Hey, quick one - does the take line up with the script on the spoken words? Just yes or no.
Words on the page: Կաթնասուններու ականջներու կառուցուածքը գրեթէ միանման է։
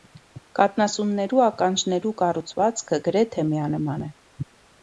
yes